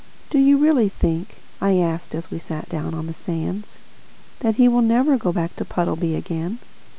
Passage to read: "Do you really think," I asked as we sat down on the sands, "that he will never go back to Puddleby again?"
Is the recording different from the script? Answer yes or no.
no